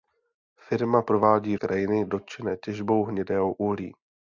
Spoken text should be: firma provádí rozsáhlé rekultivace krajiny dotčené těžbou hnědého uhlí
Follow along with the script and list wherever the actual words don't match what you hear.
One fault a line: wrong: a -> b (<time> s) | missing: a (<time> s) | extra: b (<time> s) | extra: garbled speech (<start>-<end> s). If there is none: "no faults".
missing: rozsáhlé rekultivace (1.6 s)